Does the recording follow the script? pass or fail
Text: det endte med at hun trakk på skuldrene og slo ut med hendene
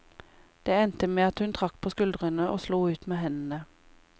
pass